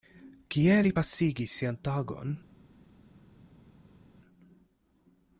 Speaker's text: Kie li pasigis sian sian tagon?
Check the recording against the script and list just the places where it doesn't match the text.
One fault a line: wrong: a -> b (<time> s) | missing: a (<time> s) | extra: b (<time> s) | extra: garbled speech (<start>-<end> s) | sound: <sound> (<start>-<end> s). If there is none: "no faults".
missing: sian (1.8 s)